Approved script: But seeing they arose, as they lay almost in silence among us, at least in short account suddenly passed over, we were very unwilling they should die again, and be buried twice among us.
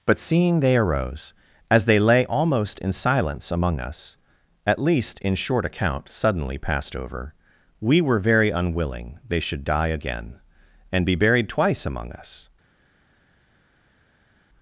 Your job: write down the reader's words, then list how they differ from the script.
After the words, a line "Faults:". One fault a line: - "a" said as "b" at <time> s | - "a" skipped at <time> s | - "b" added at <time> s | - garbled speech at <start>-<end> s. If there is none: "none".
But seeing they arose, as they lay almost in silence among us, at least in short account suddenly passed over, we were very unwilling they should die again, and be buried twice among us.
Faults:
none